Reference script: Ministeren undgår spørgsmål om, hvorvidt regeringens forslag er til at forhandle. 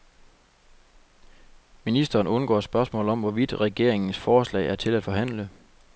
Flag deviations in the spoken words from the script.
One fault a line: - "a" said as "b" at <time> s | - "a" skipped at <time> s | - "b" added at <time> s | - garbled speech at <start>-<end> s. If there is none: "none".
none